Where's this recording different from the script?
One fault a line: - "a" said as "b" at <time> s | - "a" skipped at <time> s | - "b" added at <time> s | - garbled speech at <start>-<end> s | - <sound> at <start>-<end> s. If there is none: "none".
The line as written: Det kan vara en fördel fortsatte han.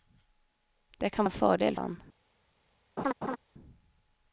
- "vara" skipped at 1.2 s
- "fortsatte" skipped at 1.8 s
- laugh at 3.0-3.4 s